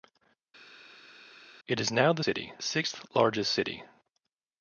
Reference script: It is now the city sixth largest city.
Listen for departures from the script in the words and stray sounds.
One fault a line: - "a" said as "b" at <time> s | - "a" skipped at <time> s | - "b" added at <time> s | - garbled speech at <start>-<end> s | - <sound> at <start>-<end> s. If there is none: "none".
none